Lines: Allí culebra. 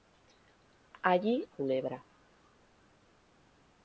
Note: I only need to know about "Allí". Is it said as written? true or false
true